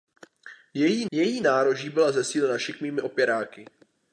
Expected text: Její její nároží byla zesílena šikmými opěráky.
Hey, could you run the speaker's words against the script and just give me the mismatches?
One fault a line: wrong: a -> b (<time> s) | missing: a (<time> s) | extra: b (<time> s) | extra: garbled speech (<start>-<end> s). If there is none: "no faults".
no faults